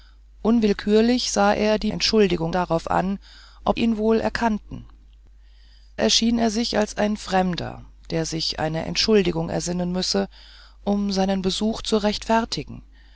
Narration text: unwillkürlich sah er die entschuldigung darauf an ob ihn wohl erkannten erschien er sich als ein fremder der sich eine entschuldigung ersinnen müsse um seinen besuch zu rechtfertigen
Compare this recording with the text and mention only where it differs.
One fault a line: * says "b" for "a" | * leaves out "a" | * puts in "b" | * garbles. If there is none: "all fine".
all fine